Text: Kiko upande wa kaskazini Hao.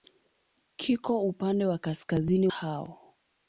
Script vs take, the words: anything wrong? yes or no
no